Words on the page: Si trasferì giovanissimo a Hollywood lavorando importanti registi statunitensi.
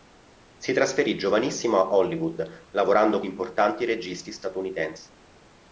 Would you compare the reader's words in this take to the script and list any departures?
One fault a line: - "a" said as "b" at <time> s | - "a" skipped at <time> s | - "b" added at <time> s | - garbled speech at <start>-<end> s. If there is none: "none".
none